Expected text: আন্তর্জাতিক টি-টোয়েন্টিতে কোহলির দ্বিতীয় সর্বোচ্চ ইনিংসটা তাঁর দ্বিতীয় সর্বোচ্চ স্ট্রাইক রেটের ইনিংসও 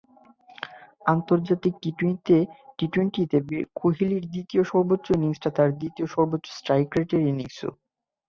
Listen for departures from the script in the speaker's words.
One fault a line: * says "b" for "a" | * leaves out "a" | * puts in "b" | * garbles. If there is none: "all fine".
all fine